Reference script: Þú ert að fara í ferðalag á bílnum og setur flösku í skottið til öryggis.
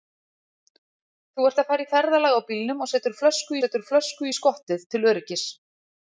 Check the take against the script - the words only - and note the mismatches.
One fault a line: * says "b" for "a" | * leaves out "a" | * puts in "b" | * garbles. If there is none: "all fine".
* puts in "setur flösku"